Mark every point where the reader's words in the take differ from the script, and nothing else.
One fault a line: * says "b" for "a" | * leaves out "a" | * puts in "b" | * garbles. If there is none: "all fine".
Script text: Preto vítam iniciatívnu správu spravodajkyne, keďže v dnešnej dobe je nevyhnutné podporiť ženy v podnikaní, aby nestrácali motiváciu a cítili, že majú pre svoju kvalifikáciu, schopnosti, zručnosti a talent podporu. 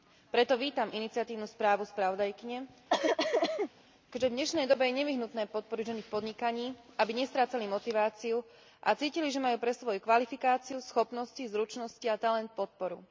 all fine